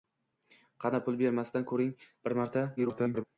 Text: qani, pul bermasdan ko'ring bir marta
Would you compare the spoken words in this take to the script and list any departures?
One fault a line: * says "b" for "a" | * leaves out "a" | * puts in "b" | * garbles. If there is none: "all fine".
* garbles